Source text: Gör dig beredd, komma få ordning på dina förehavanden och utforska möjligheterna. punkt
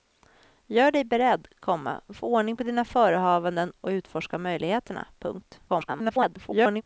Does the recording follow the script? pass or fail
fail